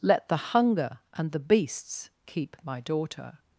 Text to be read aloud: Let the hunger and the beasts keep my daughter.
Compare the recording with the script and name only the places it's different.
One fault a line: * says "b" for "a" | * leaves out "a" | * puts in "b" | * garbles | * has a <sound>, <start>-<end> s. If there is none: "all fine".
all fine